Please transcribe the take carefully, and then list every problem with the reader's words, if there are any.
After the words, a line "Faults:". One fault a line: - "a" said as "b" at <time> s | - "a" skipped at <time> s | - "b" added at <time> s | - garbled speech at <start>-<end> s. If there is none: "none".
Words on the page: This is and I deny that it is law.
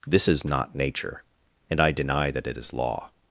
This is not nature, and I deny that it is law.
Faults:
- "not nature" added at 0.4 s